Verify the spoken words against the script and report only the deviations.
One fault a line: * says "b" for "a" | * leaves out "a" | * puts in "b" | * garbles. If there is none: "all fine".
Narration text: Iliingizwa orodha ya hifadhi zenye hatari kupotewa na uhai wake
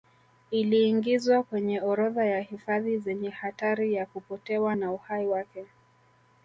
* puts in "kwenye"
* puts in "ya"